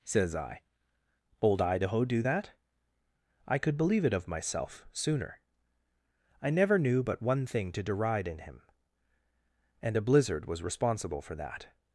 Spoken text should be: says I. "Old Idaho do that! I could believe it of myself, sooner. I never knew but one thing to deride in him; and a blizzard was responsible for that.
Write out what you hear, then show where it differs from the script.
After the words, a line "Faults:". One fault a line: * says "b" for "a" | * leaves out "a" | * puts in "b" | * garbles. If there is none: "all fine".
says I. "Old Idaho do that! I could believe it of myself, sooner. I never knew but one thing to deride in him; and a blizzard was responsible for that.
Faults:
all fine